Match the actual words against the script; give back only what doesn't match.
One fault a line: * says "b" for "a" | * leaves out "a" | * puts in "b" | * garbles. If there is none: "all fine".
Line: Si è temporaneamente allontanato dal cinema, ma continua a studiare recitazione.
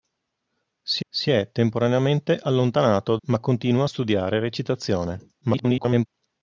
* puts in "si"
* leaves out "dal cinema"
* garbles